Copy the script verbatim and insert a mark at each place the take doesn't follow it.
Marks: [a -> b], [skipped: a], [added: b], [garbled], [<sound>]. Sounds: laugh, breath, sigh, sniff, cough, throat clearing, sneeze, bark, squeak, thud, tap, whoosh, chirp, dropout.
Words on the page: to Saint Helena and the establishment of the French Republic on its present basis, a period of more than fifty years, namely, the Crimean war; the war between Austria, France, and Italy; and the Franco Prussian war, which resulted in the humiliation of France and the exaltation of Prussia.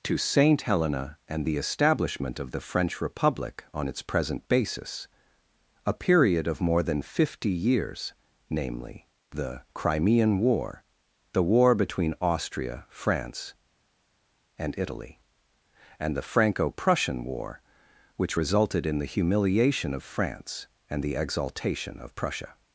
to Saint Helena and the establishment of the French Republic on its present basis, a period of more than fifty years, namely, the Crimean war; the war between Austria, France, and Italy; and the Franco Prussian war, which resulted in the humiliation of France and the exaltation of Prussia.